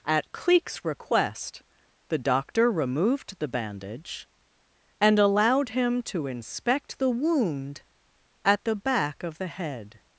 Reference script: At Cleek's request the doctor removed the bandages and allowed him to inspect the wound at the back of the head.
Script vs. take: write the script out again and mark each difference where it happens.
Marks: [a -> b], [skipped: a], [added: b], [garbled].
At Cleek's request the doctor removed the [bandages -> bandage] and allowed him to inspect the wound at the back of the head.